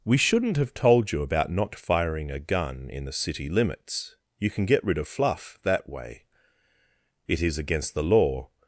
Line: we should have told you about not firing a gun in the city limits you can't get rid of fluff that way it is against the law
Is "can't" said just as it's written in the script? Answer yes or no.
no